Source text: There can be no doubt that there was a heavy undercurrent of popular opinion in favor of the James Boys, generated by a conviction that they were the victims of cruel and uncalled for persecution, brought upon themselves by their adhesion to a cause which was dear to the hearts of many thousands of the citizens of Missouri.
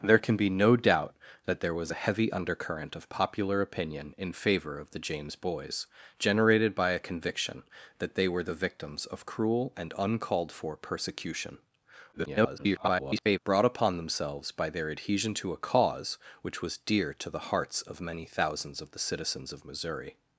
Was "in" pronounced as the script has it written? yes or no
yes